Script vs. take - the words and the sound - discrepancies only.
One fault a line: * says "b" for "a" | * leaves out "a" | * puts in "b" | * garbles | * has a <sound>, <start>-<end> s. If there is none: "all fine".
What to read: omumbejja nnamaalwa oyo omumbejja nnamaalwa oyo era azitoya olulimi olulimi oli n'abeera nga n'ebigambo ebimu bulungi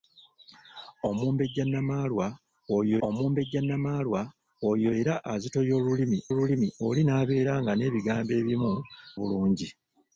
all fine